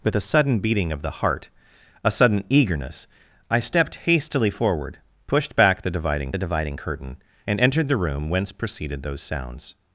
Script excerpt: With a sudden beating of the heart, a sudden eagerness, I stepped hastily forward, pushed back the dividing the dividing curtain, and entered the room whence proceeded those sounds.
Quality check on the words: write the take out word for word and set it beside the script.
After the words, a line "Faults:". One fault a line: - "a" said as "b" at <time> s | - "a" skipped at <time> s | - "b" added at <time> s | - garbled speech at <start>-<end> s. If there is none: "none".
With a sudden beating of the heart, a sudden eagerness, I stepped hastily forward, pushed back the dividing the dividing curtain, and entered the room whence proceeded those sounds.
Faults:
none